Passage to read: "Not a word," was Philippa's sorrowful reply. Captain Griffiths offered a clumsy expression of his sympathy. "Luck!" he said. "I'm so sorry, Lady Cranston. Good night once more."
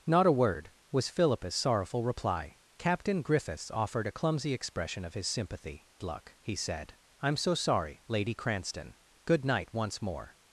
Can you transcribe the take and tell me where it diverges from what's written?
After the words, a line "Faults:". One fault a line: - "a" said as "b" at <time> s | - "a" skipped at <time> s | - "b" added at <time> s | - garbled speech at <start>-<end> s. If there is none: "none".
"Not a word," was Philippa's sorrowful reply. Captain Griffiths offered a clumsy expression of his sympathy. "Luck!" he said. "I'm so sorry, Lady Cranston. Good night once more."
Faults:
none